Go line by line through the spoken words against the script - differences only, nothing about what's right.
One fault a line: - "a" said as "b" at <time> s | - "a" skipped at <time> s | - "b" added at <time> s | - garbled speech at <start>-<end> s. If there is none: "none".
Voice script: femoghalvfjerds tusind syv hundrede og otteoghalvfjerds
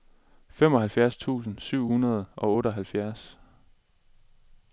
none